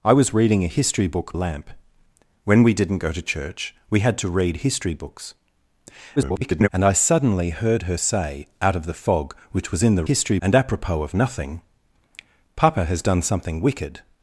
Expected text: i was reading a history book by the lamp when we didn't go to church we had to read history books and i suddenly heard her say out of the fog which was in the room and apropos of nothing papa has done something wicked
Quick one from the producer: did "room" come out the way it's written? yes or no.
no